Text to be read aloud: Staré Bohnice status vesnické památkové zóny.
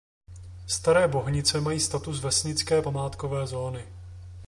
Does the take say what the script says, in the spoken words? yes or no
no